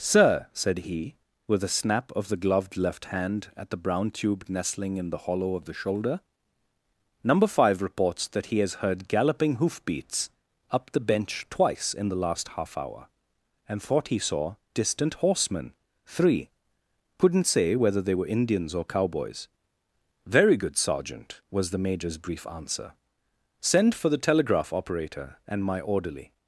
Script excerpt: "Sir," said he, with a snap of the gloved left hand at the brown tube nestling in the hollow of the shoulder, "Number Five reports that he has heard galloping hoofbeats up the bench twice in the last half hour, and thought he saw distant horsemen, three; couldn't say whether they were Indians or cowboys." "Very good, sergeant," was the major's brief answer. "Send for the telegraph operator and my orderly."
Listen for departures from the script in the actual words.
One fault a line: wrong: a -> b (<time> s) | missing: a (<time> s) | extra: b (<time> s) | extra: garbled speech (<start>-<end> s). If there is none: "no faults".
no faults